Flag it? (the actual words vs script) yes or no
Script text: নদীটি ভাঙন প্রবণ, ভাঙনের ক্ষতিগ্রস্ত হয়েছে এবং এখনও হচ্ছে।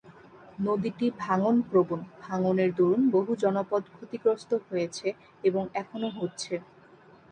yes